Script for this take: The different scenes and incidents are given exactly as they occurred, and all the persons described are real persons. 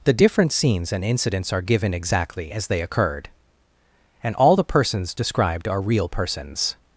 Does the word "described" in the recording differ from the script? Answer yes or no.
no